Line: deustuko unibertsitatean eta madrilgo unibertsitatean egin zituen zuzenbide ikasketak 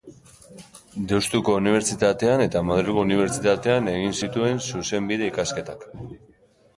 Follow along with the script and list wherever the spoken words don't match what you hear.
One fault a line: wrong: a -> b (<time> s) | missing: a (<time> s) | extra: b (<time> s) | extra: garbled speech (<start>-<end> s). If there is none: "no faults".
no faults